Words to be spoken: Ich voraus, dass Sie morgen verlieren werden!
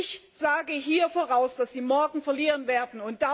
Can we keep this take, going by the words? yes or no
no